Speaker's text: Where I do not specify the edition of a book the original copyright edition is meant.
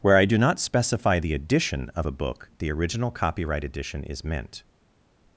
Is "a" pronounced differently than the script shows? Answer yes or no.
no